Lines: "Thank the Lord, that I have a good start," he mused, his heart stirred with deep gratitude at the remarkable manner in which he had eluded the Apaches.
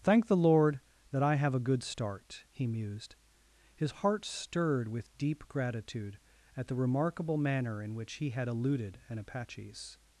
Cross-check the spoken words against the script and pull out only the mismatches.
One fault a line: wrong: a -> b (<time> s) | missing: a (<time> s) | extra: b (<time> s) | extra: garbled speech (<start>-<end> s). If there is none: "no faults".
wrong: the -> an (9.1 s)